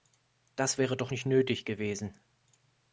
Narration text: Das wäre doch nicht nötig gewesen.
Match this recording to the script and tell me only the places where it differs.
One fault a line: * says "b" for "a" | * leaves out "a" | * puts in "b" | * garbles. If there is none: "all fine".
all fine